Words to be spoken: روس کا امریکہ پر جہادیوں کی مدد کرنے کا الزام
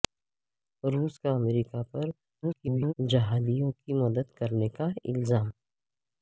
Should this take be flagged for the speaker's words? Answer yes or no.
yes